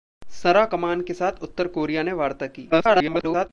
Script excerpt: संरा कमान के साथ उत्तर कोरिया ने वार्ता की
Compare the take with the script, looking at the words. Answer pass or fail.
fail